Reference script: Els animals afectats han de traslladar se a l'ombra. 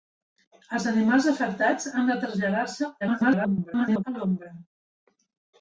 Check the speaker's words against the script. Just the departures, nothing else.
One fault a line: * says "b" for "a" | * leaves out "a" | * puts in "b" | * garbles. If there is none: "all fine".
* garbles